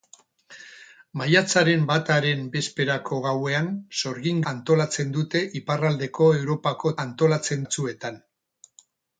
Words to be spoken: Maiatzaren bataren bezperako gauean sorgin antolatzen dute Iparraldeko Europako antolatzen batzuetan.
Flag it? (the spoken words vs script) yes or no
no